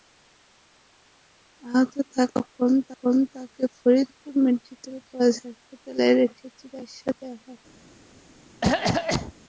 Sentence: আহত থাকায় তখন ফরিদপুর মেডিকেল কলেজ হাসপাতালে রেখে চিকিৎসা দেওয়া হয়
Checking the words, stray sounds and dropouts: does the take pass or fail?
fail